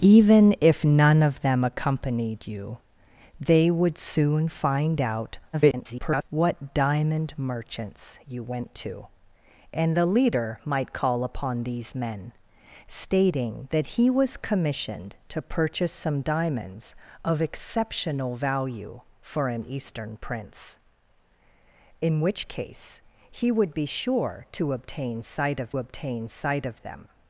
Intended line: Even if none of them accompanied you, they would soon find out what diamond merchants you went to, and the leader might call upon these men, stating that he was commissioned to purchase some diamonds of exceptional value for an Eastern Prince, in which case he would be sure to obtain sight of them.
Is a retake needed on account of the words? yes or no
yes